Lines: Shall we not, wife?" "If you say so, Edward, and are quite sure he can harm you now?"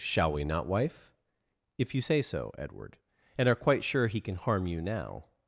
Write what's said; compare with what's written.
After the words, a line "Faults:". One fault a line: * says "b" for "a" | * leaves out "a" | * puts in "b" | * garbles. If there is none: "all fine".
Shall we not, wife?" "If you say so, Edward, and are quite sure he can harm you now?"
Faults:
all fine